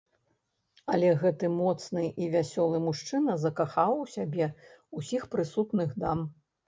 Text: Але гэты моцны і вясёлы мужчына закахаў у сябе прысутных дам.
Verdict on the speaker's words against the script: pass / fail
fail